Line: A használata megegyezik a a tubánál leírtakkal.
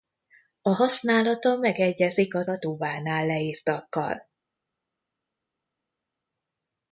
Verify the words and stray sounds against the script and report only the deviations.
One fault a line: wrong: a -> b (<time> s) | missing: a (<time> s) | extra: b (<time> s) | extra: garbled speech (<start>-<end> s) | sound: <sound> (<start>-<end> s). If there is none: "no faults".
no faults